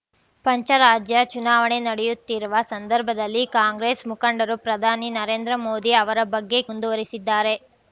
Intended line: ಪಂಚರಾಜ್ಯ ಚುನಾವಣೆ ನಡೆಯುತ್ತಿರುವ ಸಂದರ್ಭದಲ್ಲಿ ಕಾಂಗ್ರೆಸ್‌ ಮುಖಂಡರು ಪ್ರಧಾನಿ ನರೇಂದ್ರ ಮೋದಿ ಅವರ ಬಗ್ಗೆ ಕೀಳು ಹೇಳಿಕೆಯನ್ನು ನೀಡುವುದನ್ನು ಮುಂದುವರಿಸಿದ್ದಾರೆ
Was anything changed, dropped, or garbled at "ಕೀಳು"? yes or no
yes